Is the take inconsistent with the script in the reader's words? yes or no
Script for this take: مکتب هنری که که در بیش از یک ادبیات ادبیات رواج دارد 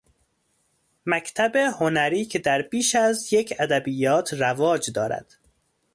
yes